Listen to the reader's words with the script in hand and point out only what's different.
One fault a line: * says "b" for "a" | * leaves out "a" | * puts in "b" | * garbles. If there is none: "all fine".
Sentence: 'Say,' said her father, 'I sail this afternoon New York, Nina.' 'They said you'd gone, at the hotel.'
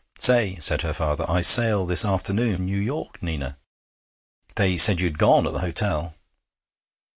all fine